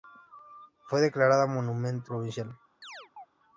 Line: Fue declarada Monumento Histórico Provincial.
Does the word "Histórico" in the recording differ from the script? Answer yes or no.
yes